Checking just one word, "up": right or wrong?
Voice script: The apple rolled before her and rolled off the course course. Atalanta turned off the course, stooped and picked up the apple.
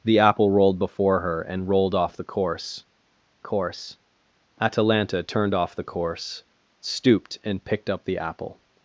right